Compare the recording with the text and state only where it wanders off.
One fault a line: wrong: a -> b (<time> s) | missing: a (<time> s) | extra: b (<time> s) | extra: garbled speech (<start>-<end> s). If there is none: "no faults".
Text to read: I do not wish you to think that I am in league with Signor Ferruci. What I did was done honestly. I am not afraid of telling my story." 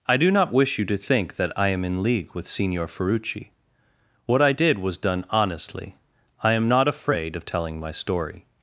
no faults